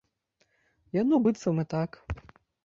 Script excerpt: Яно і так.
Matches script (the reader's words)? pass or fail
fail